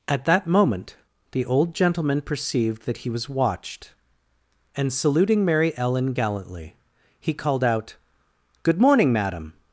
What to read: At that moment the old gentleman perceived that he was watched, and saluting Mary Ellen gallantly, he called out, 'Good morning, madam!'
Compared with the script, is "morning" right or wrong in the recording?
right